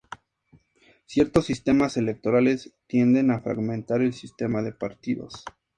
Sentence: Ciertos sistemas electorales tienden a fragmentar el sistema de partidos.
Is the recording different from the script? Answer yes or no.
no